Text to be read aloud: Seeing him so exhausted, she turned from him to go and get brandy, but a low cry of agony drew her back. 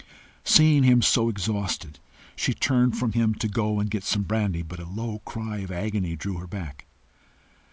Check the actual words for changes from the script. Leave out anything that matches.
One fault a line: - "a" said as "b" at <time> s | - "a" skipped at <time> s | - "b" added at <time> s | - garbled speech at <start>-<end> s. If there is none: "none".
- "some" added at 4.0 s